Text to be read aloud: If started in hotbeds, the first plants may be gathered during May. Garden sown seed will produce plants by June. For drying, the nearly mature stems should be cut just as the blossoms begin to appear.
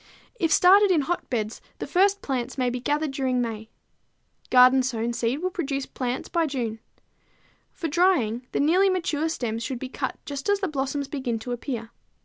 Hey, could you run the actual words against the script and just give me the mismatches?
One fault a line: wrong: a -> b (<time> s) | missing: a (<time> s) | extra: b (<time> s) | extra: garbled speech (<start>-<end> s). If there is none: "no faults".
no faults